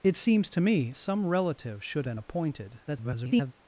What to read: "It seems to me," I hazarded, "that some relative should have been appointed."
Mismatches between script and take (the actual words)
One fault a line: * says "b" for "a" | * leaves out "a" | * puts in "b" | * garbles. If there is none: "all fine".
* leaves out "I hazarded that"
* leaves out "have"
* garbles